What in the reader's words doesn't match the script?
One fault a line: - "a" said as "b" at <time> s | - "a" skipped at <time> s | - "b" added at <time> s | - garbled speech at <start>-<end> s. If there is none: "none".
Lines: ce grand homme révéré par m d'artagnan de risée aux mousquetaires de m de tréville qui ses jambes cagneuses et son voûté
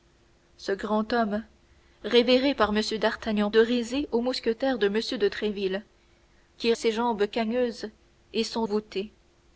none